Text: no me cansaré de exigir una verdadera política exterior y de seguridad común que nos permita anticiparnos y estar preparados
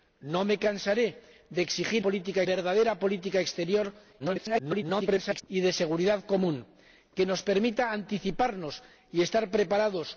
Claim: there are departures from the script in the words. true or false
true